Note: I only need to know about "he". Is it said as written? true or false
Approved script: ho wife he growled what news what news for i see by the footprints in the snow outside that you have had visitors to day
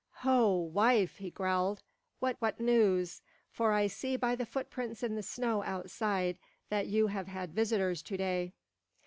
true